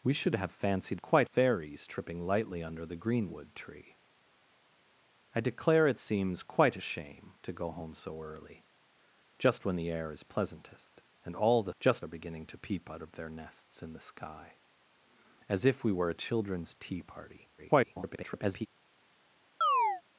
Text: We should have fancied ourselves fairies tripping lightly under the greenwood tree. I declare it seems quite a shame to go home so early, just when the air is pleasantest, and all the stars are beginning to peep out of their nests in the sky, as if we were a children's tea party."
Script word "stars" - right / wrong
wrong